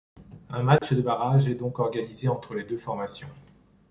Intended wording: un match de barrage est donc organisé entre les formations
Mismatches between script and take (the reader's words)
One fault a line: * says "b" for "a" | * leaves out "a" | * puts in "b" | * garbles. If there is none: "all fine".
* puts in "deux"